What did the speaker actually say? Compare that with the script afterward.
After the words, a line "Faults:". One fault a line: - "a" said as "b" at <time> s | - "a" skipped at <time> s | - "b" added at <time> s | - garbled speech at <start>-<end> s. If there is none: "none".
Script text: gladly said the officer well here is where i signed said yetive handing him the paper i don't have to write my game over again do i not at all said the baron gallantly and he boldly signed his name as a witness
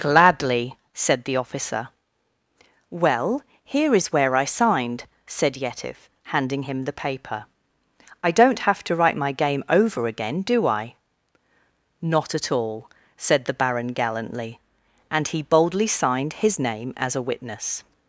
gladly said the officer well here is where i signed said yetive handing him the paper i don't have to write my game over again do i not at all said the baron gallantly and he boldly signed his name as a witness
Faults:
none